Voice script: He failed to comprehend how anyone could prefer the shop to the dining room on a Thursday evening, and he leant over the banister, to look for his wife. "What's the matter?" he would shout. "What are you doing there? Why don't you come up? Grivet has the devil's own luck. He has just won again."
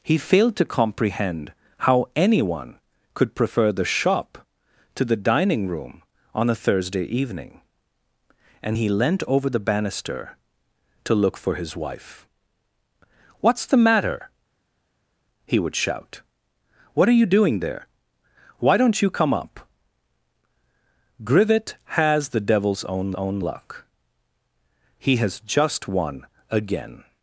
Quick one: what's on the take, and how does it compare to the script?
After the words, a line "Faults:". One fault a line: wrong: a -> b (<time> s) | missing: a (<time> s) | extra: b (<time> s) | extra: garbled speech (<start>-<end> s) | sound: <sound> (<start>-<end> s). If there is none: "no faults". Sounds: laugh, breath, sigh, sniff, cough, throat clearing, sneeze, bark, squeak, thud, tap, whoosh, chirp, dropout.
He failed to comprehend how anyone could prefer the shop to the dining room on a Thursday evening, and he leant over the banister, to look for his wife. "What's the matter?" he would shout. "What are you doing there? Why don't you come up? Grivet has the devil's own own luck. He has just won again."
Faults:
extra: own (23.1 s)